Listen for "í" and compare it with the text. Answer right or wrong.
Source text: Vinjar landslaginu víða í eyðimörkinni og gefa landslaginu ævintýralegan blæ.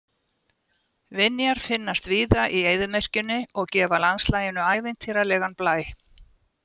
right